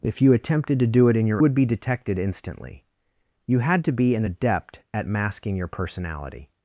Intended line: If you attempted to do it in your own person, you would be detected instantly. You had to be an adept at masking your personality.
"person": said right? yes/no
no